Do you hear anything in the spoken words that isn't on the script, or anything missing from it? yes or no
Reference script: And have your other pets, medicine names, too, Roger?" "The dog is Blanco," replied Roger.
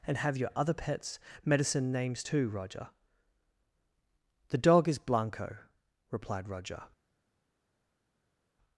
no